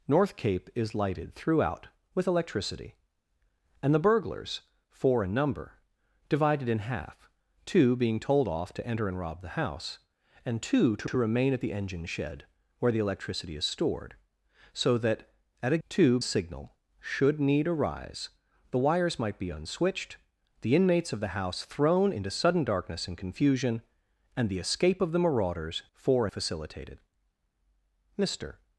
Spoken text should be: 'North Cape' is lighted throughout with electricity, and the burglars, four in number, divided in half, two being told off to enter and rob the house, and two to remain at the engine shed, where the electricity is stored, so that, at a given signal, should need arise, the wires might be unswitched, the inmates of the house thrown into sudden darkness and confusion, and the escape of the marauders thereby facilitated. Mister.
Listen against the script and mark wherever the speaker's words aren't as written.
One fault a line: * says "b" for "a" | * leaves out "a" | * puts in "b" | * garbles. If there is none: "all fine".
* puts in "to"
* says "two" for "given"
* says "four" for "thereby"